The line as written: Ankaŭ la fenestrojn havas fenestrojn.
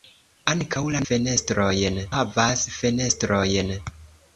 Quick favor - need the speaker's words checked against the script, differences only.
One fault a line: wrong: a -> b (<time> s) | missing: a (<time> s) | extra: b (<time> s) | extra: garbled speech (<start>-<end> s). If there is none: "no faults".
no faults